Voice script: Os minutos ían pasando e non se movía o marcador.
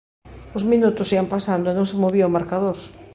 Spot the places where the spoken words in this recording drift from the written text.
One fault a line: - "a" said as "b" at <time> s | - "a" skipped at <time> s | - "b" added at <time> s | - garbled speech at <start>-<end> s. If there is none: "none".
none